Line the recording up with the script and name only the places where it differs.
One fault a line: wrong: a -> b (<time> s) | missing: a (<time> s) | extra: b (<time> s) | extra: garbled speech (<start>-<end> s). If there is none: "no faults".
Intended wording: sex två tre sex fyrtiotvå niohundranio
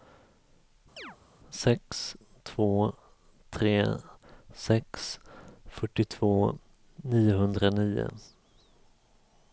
no faults